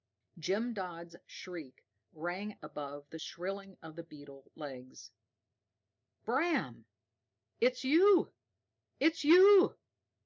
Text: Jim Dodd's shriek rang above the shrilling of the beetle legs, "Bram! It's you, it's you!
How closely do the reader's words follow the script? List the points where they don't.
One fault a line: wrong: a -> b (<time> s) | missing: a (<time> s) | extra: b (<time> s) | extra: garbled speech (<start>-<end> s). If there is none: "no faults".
no faults